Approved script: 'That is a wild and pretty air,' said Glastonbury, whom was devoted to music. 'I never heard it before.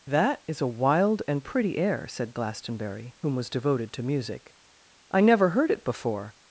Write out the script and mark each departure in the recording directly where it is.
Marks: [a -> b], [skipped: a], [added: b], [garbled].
'That is a wild and pretty air,' said Glastonbury, whom was devoted to music. 'I never heard it before.